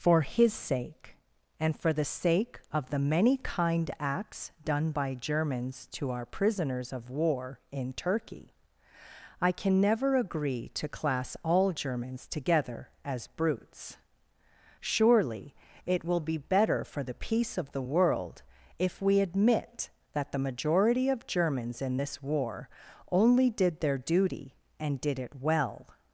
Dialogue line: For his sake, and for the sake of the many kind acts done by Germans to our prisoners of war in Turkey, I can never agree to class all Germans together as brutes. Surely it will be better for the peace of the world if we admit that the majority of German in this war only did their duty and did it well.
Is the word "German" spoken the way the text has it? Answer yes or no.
no